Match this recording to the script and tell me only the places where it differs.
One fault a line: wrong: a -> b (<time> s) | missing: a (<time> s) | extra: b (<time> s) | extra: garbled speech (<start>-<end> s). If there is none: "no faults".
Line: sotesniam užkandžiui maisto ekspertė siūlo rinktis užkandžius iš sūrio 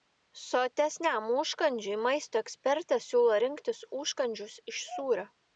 no faults